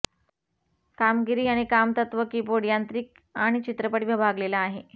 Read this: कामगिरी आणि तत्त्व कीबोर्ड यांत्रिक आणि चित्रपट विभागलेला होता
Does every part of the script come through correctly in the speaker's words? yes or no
no